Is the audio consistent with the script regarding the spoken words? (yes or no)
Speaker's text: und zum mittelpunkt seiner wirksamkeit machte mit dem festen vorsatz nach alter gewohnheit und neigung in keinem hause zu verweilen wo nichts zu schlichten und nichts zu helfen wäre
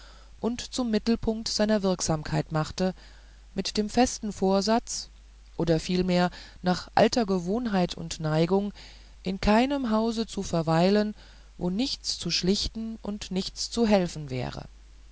no